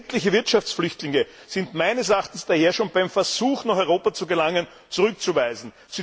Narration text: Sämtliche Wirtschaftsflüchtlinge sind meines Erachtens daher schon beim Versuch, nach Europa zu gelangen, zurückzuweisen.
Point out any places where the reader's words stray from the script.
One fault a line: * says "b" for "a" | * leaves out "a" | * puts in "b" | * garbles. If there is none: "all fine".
all fine